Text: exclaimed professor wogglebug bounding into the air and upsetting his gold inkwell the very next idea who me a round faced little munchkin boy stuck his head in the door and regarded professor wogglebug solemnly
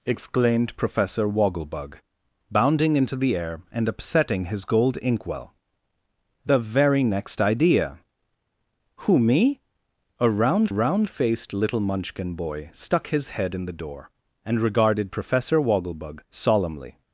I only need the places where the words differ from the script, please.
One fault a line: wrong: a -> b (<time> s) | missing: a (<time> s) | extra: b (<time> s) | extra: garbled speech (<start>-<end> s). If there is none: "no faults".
extra: round (10.7 s)